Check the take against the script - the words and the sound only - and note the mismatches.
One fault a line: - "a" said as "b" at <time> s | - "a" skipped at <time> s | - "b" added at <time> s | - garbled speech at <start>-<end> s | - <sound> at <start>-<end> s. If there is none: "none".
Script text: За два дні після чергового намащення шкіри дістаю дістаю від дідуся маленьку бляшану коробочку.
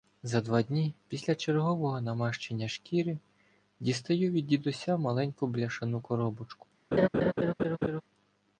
- "дістаю" skipped at 4.3 s
- laugh at 6.9-8.0 s